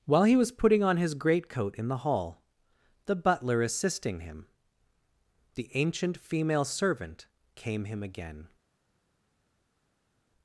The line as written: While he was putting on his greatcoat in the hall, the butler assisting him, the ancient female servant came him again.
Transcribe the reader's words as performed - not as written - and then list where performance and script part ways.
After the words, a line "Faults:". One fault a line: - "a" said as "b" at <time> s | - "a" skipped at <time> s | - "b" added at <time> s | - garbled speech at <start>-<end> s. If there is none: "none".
While he was putting on his greatcoat in the hall, the butler assisting him, the ancient female servant came him again.
Faults:
none